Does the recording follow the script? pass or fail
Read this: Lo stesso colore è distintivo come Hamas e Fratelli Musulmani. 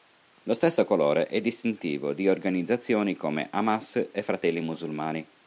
fail